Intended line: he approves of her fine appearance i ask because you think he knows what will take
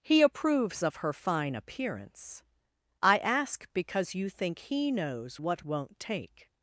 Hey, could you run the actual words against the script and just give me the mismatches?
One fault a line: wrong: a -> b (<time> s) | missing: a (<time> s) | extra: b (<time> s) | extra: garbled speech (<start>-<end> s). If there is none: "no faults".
wrong: will -> won't (5.6 s)